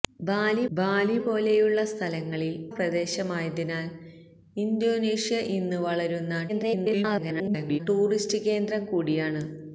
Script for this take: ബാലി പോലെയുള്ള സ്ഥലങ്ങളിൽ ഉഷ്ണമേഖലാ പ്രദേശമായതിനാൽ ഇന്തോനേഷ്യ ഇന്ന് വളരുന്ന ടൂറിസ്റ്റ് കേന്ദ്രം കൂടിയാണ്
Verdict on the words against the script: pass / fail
fail